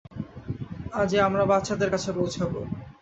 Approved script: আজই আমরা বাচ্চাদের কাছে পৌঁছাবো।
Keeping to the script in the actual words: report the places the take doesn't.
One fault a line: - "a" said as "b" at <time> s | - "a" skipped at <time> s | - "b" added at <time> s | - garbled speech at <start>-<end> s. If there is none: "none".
none